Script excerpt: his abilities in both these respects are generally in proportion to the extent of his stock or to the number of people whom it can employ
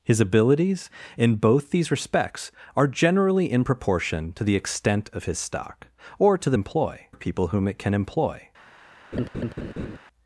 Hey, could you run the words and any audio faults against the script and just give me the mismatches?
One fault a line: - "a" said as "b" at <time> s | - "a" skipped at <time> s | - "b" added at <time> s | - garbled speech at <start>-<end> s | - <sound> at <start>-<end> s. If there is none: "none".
- "number" said as "employ" at 6.5 s
- laugh at 9.1-10.0 s